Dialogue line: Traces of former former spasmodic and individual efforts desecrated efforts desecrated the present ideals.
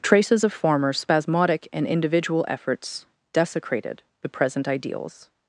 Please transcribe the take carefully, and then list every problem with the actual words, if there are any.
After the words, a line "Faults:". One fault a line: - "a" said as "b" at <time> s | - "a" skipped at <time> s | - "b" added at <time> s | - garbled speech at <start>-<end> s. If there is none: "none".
Traces of former spasmodic and individual efforts desecrated the present ideals.
Faults:
- "former" skipped at 0.9 s
- "efforts desecrated" skipped at 4.0 s